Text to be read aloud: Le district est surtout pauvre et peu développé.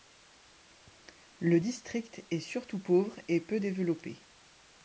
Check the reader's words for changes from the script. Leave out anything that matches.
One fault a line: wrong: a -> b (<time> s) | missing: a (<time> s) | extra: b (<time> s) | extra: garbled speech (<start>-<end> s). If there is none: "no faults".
no faults